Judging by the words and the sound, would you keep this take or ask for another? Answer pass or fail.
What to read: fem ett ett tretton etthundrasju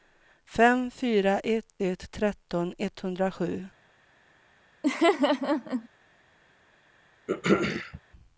fail